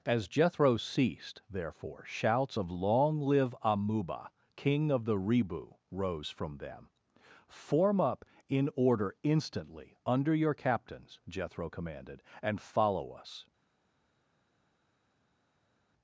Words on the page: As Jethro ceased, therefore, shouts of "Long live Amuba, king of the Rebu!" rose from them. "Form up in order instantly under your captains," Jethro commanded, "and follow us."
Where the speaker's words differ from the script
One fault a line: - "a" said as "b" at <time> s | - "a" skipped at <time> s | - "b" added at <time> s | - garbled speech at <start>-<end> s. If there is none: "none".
none